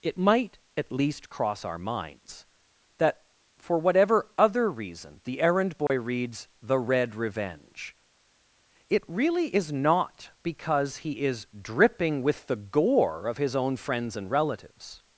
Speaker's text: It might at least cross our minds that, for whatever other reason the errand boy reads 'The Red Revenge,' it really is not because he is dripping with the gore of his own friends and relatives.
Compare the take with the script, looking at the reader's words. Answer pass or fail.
pass